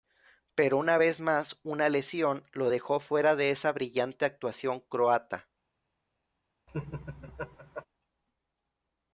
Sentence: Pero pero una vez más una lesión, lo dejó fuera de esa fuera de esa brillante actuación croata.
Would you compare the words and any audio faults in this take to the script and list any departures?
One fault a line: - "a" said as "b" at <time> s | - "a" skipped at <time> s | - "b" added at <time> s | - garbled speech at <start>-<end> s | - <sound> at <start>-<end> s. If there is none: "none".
- "pero" skipped at 0.8 s
- "fuera de esa" skipped at 3.7 s
- laugh at 6.7-7.9 s